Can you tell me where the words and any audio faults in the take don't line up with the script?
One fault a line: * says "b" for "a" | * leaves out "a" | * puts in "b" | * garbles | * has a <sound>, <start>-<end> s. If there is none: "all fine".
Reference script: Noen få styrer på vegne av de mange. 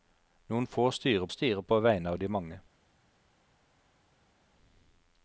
* puts in "styrer"